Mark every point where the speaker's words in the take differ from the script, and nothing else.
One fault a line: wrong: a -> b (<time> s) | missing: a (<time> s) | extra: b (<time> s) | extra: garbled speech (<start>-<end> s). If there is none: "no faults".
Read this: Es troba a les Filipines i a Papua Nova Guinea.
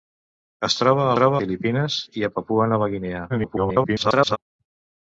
wrong: les -> troba (1.1 s)
extra: garbled speech (3.3-4.4 s)